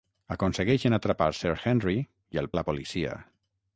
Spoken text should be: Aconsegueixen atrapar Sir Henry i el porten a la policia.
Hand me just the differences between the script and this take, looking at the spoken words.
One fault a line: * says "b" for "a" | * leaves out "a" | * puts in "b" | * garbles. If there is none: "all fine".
* leaves out "porten"